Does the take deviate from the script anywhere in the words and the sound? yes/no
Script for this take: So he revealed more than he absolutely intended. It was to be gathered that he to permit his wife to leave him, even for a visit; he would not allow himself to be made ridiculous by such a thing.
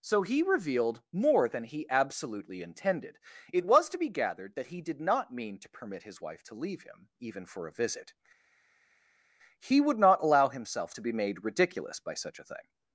yes